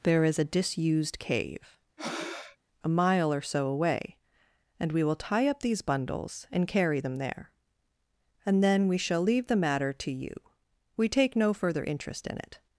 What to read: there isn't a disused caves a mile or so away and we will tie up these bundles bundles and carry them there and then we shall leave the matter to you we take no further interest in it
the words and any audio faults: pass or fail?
fail